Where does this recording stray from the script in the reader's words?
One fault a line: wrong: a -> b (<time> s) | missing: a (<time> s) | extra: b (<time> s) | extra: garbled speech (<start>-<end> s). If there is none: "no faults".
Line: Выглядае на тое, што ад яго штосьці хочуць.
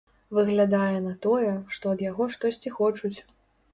no faults